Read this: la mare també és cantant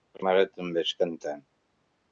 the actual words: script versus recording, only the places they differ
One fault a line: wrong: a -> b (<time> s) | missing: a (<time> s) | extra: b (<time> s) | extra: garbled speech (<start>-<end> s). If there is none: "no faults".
no faults